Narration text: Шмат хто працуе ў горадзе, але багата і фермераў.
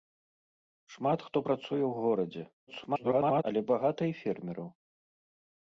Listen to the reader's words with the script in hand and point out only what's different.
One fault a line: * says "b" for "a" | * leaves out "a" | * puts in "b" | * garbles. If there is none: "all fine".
* garbles